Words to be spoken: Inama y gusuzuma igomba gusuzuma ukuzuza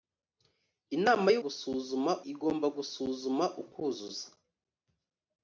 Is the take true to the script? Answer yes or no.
yes